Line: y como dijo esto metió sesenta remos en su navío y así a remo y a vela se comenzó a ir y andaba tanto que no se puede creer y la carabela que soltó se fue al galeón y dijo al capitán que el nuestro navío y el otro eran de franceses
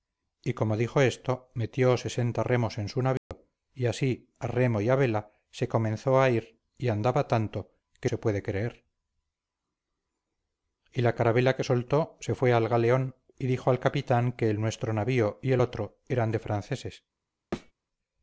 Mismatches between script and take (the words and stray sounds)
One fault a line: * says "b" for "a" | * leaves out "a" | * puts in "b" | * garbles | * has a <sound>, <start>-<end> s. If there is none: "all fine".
* has a dropout, 3.2-3.3 s
* leaves out "no"
* has a thud, 17.5-17.7 s